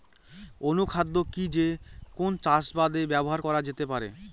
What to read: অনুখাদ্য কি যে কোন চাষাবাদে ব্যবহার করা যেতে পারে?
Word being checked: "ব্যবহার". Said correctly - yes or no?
yes